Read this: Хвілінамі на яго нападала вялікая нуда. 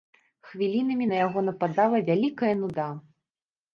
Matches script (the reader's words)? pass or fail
pass